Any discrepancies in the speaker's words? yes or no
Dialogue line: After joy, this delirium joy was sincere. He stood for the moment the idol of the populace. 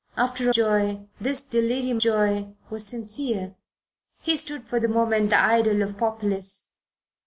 no